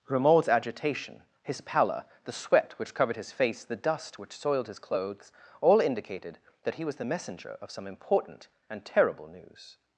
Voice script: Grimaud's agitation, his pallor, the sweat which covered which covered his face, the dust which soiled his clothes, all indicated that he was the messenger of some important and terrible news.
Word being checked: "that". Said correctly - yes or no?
yes